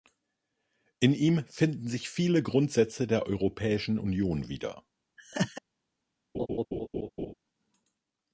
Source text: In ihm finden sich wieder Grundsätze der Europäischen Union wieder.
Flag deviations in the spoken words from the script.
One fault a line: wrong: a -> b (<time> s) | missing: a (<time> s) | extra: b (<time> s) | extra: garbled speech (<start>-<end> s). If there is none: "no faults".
wrong: wieder -> viele (2.1 s)